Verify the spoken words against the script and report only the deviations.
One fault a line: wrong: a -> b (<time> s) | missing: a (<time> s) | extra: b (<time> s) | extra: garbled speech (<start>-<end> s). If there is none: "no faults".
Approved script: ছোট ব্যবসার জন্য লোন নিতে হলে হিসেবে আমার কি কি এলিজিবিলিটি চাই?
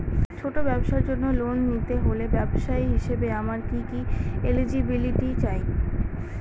extra: ব্যবসায়ী (2.3 s)